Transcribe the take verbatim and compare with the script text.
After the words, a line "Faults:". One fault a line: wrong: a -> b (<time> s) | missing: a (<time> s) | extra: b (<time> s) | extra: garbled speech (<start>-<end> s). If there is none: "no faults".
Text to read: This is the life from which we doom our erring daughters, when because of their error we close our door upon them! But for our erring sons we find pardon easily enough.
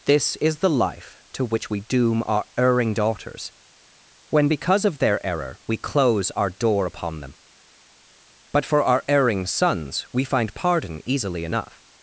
This is the life to which we doom our erring daughters, when because of their error we close our door upon them! But for our erring sons we find pardon easily enough.
Faults:
wrong: from -> to (1.3 s)